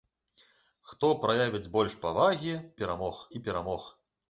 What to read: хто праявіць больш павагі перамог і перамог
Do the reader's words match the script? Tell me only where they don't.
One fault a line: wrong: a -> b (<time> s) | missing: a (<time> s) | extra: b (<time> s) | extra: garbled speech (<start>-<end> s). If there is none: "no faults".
no faults